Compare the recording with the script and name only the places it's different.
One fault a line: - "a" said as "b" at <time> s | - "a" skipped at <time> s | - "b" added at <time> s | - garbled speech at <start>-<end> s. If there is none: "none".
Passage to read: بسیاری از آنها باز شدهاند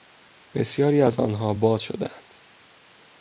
none